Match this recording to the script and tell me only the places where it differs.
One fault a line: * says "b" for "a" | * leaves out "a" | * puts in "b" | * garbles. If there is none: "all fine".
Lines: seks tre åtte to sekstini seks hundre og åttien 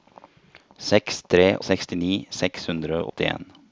* leaves out "åtte to"
* leaves out "og"